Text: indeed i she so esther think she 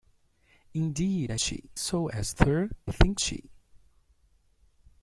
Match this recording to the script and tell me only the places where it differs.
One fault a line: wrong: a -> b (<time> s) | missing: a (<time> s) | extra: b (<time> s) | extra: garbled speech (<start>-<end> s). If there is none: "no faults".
no faults